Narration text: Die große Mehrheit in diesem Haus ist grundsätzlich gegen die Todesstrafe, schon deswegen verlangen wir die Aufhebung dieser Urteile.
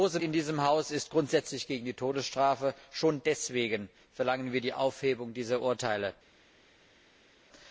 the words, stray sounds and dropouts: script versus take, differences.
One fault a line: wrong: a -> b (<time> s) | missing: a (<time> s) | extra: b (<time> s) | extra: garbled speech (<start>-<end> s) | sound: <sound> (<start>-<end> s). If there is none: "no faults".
missing: Mehrheit (0.2 s)